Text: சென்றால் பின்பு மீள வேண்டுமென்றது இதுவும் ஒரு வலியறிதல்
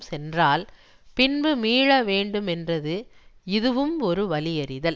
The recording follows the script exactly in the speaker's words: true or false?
true